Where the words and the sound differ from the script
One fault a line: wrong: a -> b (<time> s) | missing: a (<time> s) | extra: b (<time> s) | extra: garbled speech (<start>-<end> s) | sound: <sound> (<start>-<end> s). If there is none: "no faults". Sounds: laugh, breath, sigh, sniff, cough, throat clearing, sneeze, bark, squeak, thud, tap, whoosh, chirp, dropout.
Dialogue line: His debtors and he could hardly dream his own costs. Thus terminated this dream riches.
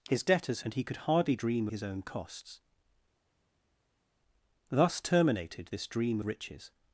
no faults